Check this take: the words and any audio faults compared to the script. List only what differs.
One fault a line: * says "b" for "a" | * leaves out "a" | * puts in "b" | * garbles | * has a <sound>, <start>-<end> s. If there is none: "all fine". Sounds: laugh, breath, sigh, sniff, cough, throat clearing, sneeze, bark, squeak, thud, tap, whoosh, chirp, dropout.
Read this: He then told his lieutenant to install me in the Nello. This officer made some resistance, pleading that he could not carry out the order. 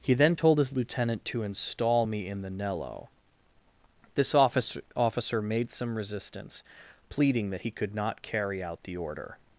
* puts in "officer"